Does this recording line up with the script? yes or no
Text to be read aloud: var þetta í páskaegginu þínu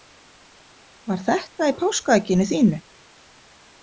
yes